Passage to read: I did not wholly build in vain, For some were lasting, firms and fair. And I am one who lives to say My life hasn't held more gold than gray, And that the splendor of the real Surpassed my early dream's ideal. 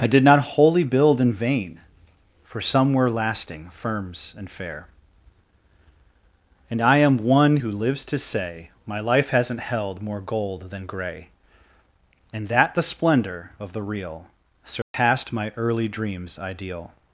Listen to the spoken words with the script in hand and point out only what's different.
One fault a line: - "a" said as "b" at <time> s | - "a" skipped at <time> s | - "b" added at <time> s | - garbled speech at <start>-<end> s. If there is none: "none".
none